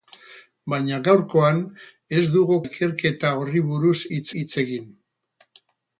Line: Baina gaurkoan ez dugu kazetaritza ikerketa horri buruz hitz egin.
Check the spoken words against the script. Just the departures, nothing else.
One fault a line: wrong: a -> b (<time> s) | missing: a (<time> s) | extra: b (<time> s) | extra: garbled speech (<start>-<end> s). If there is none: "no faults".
missing: kazetaritza (2.6 s)
extra: hitz (4.4 s)